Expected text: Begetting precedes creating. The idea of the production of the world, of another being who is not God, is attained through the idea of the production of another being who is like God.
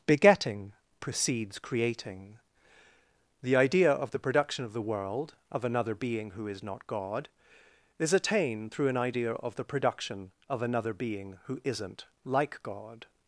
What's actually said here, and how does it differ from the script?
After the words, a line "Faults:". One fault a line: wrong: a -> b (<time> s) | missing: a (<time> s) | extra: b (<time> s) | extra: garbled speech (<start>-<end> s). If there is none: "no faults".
Begetting precedes creating. The idea of the production of the world, of another being who is not God, is attained through an idea of the production of another being who isn't like God.
Faults:
wrong: the -> an (8.9 s)
wrong: is -> isn't (11.6 s)